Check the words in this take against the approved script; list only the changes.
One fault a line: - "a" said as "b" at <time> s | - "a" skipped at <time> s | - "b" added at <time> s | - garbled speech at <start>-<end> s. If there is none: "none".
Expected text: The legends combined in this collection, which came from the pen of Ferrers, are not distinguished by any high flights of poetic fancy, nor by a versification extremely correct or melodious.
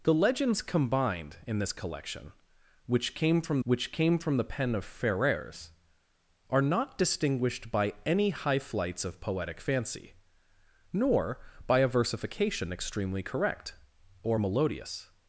- "which came from" added at 3.6 s